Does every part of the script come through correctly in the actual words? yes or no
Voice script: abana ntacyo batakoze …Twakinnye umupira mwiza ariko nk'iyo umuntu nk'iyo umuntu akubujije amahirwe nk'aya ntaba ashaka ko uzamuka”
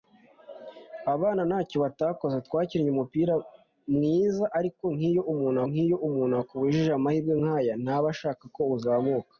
yes